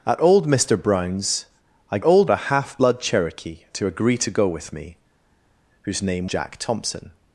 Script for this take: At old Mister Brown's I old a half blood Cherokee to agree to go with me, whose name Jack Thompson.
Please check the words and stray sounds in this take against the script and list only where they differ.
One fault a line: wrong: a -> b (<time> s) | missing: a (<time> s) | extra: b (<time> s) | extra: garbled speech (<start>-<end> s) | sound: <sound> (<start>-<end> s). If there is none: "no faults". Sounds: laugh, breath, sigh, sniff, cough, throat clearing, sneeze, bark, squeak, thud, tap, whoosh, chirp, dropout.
no faults